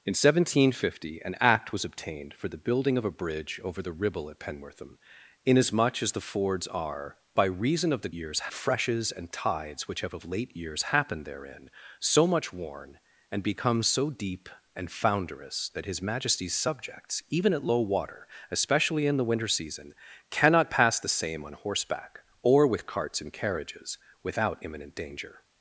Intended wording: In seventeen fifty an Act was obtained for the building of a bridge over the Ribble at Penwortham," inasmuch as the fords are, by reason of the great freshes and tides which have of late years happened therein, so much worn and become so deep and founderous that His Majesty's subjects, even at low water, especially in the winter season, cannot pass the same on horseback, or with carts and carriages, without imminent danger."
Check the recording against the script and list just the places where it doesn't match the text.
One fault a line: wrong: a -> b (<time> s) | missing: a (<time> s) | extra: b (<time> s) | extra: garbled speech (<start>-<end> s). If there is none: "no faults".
wrong: great -> years (8.1 s)